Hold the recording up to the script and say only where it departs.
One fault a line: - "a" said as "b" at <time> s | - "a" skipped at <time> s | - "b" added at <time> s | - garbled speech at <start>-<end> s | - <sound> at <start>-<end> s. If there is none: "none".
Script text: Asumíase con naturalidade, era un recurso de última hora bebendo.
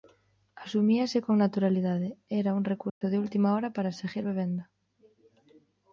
- dropout at 2.9-3.0 s
- "para seguir" added at 3.8 s